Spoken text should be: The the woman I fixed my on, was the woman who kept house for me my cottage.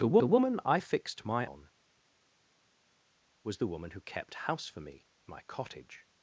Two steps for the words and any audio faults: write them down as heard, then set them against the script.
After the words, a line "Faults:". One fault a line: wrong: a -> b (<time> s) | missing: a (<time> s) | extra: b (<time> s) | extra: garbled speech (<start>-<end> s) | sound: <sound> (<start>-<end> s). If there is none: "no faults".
The the woman I fixed my on, was the woman who kept house for me my cottage.
Faults:
no faults